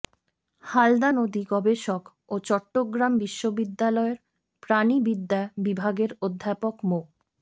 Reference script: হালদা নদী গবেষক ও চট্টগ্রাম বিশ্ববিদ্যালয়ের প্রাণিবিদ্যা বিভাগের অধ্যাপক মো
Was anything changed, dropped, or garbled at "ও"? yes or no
no